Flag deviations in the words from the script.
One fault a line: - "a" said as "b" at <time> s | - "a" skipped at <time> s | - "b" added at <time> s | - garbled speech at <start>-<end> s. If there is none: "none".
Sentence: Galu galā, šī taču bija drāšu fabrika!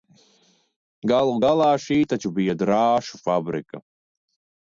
none